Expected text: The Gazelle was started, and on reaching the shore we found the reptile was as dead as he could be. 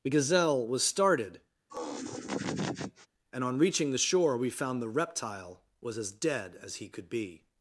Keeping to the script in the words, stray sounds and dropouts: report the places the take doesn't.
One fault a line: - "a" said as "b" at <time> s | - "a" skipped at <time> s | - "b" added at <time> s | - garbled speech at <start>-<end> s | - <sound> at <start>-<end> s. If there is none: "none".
- laugh at 1.7-3.1 s